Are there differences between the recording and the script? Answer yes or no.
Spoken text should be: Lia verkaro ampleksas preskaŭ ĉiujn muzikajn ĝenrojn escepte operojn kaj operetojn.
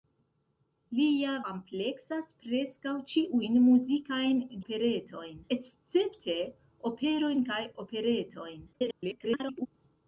yes